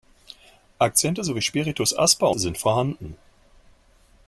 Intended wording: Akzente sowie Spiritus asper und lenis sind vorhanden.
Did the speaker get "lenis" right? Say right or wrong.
wrong